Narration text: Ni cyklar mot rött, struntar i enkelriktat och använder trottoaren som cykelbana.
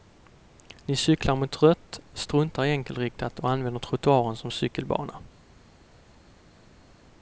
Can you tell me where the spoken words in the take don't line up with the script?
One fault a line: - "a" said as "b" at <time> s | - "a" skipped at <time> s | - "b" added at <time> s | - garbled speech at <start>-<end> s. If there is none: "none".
none